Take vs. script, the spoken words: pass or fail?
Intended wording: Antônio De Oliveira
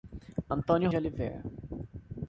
pass